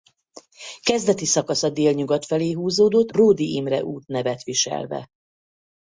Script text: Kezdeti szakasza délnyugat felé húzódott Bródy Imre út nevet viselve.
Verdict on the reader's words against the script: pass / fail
pass